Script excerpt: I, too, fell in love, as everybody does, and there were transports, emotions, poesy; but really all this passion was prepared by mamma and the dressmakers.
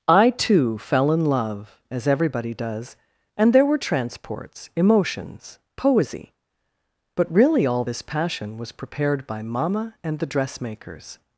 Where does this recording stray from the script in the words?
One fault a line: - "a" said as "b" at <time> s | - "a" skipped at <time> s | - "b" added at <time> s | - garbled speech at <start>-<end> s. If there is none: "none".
none